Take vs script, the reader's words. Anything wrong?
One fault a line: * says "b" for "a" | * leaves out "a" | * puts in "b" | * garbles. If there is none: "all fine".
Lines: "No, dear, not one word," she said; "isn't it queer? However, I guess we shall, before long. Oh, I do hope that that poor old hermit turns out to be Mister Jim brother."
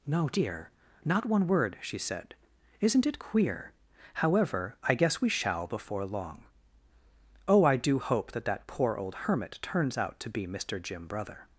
all fine